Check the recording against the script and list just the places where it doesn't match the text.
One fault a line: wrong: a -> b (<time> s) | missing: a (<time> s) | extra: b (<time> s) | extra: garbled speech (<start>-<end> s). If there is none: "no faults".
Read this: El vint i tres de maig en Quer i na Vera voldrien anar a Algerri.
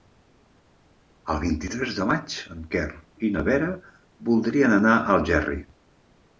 no faults